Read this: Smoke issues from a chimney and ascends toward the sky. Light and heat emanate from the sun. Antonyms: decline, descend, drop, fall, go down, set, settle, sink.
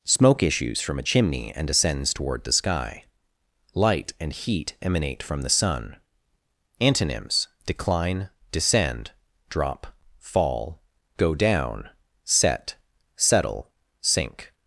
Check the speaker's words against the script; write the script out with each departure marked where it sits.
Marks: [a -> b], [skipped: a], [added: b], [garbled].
Smoke issues from a chimney and ascends toward the sky. Light and heat emanate from the sun. Antonyms: decline, descend, drop, fall, go down, set, settle, sink.